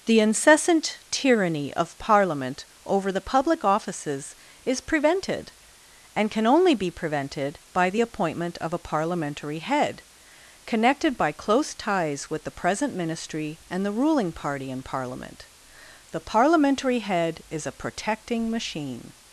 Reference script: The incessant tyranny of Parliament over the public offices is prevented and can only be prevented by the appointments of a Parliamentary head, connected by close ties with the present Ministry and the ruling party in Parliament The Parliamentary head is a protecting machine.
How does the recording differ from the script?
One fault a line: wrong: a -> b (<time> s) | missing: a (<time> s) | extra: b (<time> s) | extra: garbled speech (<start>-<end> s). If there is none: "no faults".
wrong: appointments -> appointment (8.0 s)